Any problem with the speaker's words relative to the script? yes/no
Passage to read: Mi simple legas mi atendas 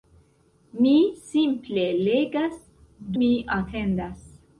no